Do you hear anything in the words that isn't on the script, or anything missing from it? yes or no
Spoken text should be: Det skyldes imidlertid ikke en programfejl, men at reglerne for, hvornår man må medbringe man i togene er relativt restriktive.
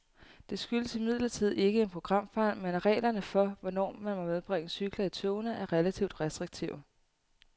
yes